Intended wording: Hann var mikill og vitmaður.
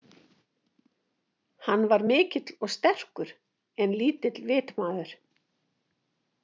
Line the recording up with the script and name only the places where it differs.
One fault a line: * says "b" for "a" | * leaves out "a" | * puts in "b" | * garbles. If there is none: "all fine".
* puts in "sterkur en lítill"